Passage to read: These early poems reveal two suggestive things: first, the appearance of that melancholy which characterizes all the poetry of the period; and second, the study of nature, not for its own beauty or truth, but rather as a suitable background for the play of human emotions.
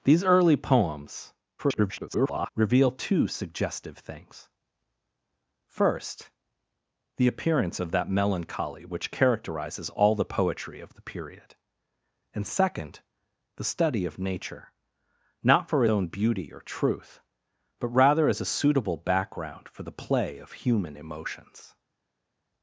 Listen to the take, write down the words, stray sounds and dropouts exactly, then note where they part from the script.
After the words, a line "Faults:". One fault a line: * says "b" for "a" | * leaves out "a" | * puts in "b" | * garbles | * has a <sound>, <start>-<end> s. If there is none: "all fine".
These early poems [garbled] reveal two suggestive things: first, the appearance of that melancholy which characterizes all the poetry of the period; and second, the study of nature, not for own beauty or truth, but rather as a suitable background for the play of human emotions.
Faults:
* garbles
* leaves out "its"